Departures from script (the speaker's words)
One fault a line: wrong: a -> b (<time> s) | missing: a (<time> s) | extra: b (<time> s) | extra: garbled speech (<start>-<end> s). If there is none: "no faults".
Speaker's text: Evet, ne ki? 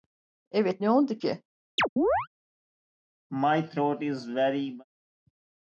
extra: oldu (0.9 s)